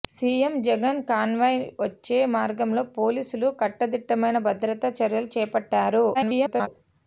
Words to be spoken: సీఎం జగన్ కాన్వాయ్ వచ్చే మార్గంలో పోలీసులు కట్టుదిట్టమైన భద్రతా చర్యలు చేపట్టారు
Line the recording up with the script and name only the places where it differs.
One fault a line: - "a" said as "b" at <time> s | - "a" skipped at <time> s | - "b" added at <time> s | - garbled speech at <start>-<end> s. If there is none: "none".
- garbled speech at 6.1-6.7 s